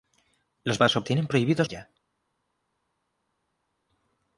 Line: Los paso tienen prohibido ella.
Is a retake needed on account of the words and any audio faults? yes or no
no